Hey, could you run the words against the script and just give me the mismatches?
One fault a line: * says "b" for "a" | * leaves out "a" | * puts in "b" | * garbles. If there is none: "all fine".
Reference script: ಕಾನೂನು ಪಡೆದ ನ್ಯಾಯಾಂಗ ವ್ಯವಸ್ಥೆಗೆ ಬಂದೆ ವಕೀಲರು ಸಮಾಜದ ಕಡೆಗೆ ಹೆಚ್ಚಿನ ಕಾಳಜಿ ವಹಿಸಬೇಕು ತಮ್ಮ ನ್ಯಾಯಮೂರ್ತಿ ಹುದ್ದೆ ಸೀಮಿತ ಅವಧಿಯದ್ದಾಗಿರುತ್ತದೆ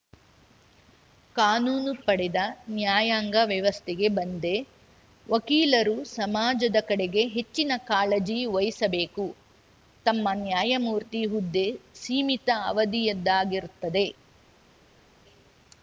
all fine